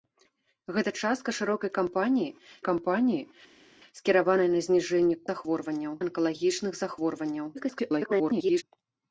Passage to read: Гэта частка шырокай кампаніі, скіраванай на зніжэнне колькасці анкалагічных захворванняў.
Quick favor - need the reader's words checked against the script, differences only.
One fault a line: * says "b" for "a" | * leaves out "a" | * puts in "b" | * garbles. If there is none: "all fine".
* puts in "кампаніі"
* says "захворванняў" for "колькасці"
* garbles